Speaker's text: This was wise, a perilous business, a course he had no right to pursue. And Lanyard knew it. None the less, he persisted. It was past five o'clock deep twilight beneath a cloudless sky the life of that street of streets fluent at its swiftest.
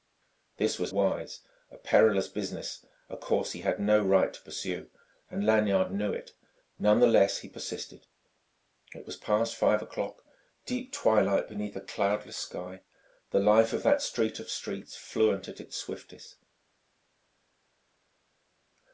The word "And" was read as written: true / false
true